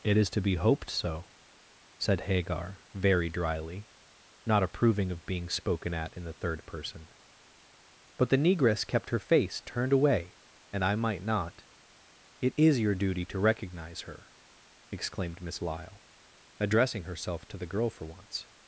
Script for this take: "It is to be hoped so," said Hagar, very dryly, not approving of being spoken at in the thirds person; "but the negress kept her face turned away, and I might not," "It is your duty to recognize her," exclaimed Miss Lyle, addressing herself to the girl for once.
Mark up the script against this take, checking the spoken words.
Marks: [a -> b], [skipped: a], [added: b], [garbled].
"It is to be hoped so," said Hagar, very dryly, not approving of being spoken at in the [thirds -> third] person; "but the negress kept her face turned away, and I might not," "It is your duty to recognize her," exclaimed Miss Lyle, addressing herself to the girl for once.